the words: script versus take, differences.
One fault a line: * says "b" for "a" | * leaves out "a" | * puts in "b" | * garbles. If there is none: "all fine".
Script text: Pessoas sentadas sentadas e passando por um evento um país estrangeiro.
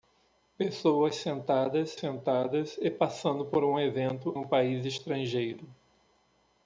all fine